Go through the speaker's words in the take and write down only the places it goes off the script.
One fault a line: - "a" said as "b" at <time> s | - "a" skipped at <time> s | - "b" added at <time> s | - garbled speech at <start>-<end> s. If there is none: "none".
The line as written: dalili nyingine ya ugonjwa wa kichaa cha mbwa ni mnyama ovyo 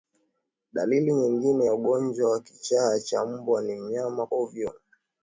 none